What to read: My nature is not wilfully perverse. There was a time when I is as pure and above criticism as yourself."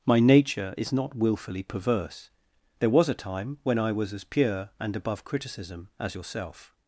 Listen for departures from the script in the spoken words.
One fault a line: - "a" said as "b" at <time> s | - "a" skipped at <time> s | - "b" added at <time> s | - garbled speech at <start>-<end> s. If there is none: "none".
- "is" said as "was" at 3.9 s